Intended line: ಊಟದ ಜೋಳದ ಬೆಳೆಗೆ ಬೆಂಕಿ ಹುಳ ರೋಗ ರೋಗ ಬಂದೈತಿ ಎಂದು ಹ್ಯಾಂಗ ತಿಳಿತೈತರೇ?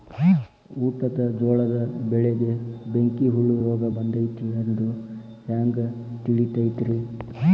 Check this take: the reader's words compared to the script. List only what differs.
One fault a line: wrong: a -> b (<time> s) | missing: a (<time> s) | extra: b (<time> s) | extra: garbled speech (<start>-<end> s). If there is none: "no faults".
missing: ರೋಗ (3.8 s)